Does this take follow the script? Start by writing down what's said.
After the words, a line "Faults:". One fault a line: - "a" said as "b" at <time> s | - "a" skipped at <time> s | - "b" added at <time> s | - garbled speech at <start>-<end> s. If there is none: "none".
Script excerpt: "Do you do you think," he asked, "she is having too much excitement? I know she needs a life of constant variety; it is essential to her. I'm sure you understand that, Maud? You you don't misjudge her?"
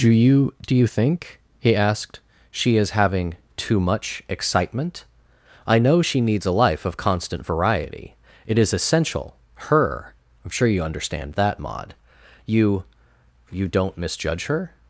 "Do you do you think," he asked, "she is having too much excitement? I know she needs a life of constant variety; it is essential her. I'm sure you understand that, Maud? You you don't misjudge her?"
Faults:
- "to" skipped at 9.4 s